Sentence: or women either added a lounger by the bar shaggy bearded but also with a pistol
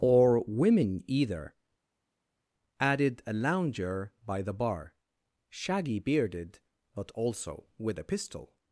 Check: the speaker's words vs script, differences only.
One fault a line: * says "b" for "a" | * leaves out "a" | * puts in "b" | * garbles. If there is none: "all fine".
all fine